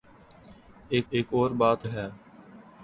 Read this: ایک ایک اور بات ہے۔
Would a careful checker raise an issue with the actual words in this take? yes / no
no